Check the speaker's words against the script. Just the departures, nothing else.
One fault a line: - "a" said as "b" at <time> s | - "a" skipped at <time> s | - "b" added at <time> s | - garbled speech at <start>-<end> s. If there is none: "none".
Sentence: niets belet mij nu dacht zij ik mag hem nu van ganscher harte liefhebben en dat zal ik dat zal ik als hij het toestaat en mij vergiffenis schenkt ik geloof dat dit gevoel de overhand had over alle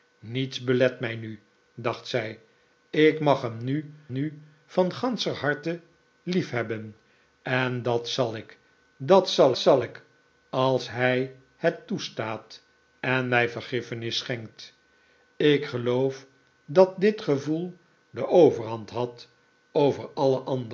- "nu" added at 4.1 s
- "zal" added at 9.6 s